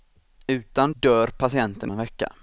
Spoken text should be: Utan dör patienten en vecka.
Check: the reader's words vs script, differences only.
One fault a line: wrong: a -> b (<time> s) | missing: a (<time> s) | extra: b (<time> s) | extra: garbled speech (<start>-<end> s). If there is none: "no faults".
no faults